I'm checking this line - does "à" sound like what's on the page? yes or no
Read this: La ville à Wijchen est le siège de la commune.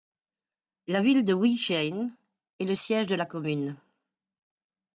no